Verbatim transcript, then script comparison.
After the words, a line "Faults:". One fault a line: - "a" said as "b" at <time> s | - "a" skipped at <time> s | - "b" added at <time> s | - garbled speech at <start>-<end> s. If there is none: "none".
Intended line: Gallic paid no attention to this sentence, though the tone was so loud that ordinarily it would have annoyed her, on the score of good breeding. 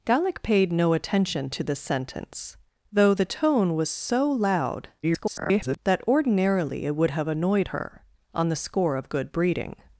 Gallic paid no attention to this sentence, though the tone was so loud [garbled] that ordinarily it would have annoyed her, on the score of good breeding.
Faults:
- garbled speech at 5.0-5.8 s